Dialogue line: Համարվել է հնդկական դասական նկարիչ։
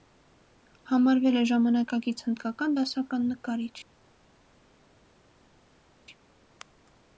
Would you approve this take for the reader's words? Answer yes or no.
no